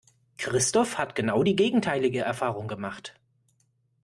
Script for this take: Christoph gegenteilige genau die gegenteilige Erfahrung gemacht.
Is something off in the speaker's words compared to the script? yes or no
yes